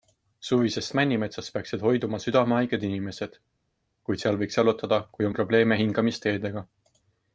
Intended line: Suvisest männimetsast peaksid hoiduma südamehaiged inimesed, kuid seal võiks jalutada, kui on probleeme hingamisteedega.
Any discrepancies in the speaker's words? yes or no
no